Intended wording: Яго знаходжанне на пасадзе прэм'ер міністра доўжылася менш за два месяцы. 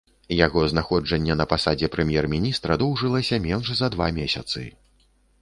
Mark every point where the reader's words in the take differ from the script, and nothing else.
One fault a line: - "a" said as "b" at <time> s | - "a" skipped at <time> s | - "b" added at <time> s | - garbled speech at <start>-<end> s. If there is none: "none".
none